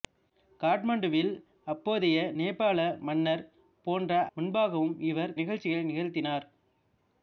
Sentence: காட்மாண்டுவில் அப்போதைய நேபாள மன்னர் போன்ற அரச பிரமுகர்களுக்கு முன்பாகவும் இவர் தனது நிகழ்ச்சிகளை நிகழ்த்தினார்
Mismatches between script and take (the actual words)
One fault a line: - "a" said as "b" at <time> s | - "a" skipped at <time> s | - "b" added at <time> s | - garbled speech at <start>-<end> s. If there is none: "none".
- "அரச பிரமுகர்களுக்கு" skipped at 4.2 s
- "தனது" skipped at 5.4 s